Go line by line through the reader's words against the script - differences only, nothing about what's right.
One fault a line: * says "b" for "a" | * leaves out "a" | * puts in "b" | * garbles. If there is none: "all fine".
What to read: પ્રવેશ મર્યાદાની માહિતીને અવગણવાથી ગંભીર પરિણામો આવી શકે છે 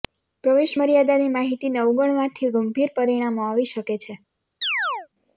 all fine